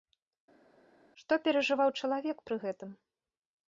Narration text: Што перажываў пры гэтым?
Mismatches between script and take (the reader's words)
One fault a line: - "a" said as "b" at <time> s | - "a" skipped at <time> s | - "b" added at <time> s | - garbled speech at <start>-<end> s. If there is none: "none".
- "чалавек" added at 2.0 s